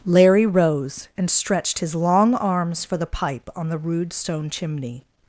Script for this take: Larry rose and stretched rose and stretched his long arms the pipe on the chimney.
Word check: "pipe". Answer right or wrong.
right